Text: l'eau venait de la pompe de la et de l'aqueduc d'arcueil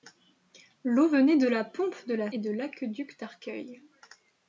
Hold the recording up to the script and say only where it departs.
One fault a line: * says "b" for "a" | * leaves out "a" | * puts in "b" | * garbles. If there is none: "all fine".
all fine